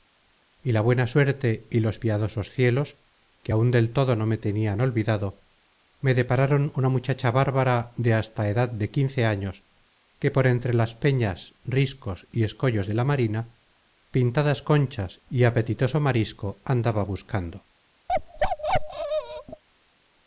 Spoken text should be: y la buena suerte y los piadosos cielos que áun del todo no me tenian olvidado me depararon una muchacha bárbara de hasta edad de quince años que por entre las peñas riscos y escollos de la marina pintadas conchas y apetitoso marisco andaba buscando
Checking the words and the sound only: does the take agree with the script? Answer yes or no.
no